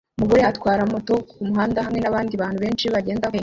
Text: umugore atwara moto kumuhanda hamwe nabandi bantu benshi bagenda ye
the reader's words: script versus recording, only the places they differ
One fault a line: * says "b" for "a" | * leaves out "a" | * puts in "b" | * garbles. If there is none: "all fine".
all fine